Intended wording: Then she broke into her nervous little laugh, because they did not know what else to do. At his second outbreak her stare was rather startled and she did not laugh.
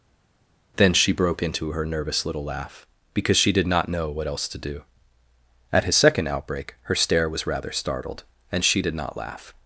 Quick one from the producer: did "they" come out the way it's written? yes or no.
no